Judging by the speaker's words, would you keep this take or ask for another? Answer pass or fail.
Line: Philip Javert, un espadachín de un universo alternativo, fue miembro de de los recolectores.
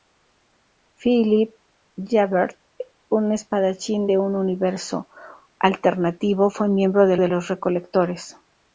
pass